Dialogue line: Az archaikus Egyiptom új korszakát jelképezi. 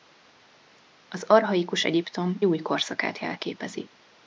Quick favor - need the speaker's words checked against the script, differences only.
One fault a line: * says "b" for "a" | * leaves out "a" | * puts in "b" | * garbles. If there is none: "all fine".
all fine